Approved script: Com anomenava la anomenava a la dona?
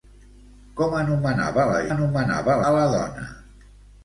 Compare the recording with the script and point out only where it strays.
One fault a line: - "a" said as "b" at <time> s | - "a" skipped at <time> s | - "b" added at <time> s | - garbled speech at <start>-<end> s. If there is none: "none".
none